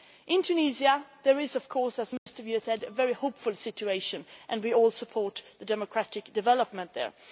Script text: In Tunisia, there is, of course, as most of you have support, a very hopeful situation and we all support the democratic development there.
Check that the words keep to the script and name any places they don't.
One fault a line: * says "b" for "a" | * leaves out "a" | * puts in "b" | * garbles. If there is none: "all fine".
* says "said" for "support"